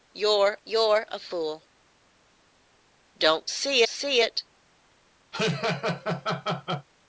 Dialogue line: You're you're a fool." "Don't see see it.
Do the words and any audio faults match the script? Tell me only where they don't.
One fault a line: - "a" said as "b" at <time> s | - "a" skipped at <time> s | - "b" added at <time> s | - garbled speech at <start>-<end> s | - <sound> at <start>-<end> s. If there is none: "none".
- laugh at 5.3-6.9 s